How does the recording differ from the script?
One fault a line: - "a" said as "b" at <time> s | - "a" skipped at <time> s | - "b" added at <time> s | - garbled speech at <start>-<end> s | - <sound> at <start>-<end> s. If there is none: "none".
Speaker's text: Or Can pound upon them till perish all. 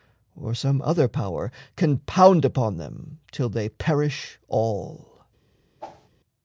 - "some other power" added at 0.5 s
- "they" added at 3.5 s
- whoosh at 5.8-6.1 s